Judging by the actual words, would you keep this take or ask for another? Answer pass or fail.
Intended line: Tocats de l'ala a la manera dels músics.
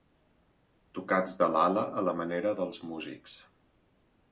pass